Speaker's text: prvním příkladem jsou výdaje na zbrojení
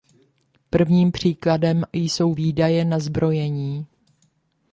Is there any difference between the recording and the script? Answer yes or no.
no